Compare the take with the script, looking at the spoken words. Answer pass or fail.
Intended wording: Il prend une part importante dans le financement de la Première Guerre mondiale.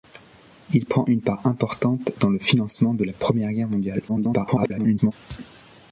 fail